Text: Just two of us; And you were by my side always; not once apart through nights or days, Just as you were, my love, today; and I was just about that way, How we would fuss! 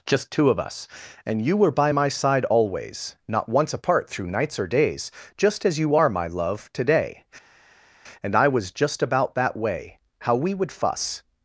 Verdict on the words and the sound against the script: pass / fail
fail